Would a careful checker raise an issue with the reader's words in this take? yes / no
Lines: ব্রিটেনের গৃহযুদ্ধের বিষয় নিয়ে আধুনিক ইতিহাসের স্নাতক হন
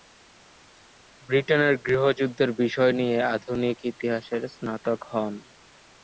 no